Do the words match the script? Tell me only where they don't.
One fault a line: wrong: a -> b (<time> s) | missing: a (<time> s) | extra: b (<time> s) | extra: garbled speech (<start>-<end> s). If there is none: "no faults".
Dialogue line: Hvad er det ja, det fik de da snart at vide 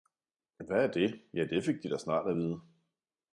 no faults